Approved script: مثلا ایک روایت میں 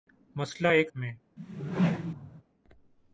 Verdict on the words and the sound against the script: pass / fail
fail